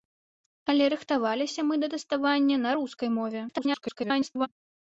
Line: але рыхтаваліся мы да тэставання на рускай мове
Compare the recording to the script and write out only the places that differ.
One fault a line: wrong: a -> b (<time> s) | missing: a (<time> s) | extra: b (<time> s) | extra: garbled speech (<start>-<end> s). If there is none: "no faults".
extra: garbled speech (3.5-4.5 s)